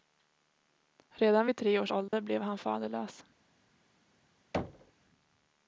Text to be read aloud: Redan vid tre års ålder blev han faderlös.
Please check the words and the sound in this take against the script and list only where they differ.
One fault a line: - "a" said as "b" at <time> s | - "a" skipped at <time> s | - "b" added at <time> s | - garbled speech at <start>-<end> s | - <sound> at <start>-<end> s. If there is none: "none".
- dropout at 2.1-2.1 s
- thud at 4.5-4.9 s